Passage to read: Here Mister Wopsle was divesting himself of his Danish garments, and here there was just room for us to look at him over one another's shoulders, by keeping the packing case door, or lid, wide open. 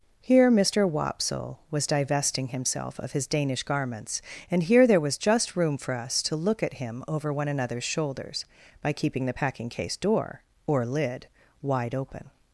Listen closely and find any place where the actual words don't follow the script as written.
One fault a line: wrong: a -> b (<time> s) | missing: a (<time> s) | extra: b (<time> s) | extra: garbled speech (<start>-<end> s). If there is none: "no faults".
no faults